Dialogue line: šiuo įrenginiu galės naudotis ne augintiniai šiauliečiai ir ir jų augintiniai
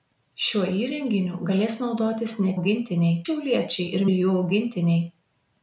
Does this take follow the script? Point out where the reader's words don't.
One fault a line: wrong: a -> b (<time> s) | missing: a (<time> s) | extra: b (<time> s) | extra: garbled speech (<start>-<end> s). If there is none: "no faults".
no faults